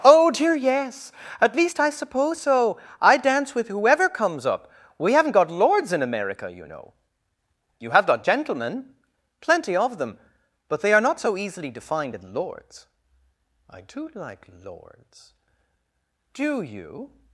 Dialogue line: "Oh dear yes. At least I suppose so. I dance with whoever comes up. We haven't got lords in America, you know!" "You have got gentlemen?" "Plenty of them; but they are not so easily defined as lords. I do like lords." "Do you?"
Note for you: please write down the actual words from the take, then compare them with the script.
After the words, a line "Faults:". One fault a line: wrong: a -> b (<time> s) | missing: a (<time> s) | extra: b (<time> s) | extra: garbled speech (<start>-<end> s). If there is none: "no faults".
"Oh dear yes. At least I suppose so. I dance with whoever comes up. We haven't got lords in America, you know!" "You have got gentlemen?" "Plenty of them; but they are not so easily defined in lords. I do like lords." "Do you?"
Faults:
wrong: as -> in (12.1 s)